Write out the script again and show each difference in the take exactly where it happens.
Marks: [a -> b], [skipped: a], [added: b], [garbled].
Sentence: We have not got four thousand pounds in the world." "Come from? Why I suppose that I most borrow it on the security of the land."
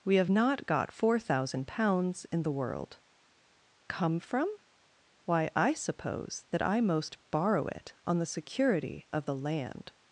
We have not got four thousand pounds in the world." "Come from? Why I suppose that I most borrow it on the security of the land."